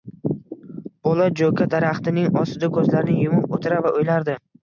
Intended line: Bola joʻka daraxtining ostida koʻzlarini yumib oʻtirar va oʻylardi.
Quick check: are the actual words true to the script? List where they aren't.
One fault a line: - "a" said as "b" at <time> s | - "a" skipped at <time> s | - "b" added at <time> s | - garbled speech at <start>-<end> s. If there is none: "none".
none